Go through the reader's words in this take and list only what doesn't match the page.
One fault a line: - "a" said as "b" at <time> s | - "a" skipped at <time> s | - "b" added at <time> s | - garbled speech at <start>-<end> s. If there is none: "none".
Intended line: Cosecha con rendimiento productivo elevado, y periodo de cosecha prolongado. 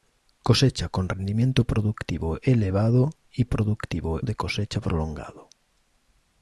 - "periodo" said as "productivo" at 3.5 s